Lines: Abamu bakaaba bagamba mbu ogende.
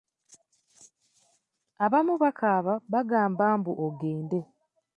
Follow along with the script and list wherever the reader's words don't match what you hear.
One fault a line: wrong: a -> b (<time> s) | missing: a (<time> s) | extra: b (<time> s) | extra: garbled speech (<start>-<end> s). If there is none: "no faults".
no faults